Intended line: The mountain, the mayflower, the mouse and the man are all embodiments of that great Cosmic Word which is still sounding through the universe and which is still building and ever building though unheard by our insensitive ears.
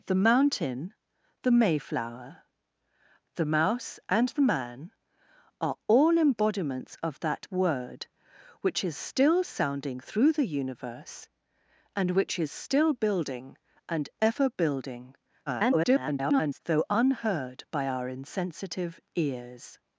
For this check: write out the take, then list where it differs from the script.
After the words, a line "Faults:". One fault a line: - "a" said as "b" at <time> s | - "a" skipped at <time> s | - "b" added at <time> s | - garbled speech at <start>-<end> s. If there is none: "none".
The mountain, the mayflower, the mouse and the man are all embodiments of that Word which is still sounding through the universe and which is still building and ever building [garbled] though unheard by our insensitive ears.
Faults:
- "great Cosmic" skipped at 7.5 s
- garbled speech at 15.5-16.6 s